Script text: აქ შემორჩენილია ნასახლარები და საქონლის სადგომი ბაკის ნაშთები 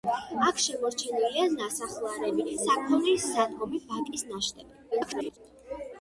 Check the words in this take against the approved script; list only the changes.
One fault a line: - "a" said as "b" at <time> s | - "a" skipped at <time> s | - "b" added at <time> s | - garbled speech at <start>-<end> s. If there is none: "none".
- "და" skipped at 2.6 s
- garbled speech at 4.9-5.4 s